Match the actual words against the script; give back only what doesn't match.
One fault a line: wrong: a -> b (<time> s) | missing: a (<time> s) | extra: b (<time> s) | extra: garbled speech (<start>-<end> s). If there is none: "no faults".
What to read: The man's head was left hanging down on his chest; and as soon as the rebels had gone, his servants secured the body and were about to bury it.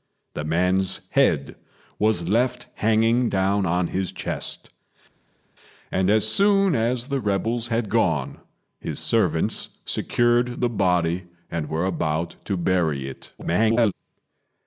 extra: garbled speech (13.4-13.9 s)